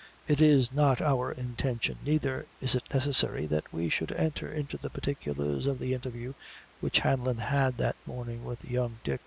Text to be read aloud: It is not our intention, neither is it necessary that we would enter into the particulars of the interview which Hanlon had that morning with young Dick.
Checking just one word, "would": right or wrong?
wrong